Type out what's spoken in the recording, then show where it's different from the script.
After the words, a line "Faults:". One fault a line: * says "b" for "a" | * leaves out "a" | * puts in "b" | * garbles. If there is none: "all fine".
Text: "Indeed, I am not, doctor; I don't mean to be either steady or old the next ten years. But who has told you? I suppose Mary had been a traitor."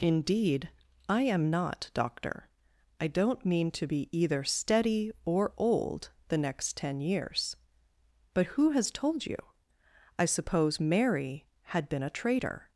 "Indeed, I am not, doctor; I don't mean to be either steady or old the next ten years. But who has told you? I suppose Mary had been a traitor."
Faults:
all fine